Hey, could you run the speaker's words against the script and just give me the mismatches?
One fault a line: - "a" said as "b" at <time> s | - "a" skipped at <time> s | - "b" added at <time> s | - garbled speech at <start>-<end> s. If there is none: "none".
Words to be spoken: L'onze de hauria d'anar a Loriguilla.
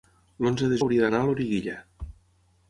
none